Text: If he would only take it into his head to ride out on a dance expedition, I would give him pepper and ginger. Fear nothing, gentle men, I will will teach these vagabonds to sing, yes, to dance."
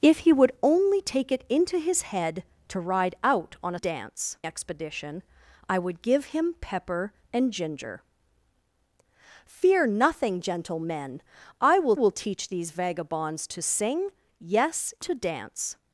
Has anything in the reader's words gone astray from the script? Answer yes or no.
no